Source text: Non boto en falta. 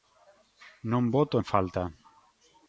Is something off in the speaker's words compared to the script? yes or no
no